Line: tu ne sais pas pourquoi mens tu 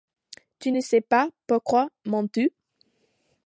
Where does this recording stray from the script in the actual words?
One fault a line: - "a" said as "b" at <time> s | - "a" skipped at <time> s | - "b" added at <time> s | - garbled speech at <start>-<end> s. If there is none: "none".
none